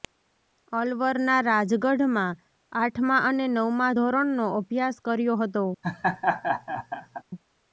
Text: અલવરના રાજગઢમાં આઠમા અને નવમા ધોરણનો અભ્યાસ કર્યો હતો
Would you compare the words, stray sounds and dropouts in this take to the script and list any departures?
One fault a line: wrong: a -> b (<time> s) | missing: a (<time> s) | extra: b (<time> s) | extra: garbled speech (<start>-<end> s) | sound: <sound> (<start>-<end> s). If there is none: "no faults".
sound: laugh (5.8-7.2 s)